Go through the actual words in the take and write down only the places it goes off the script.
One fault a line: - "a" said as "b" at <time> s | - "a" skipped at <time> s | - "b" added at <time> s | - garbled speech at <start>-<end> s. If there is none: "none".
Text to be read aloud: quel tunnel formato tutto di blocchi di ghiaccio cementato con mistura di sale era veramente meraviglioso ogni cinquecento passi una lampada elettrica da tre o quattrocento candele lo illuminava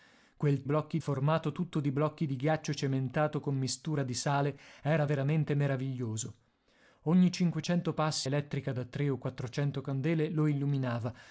- "tunnel" said as "blocchi" at 0.6 s
- "una lampada" skipped at 8.3 s